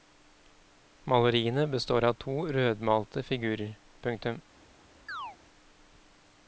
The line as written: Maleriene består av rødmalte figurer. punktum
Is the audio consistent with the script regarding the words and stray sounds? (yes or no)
no